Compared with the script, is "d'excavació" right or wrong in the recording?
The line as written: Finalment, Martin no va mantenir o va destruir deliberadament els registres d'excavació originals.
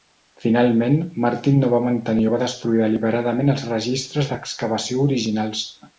right